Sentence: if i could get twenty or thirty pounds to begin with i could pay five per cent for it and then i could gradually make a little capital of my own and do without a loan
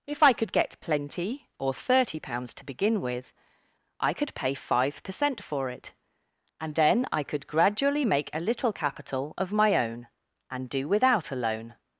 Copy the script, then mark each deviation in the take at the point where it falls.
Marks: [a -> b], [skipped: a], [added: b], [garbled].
if i could get [twenty -> plenty] or thirty pounds to begin with i could pay five per cent for it and then i could gradually make a little capital of my own and do without a loan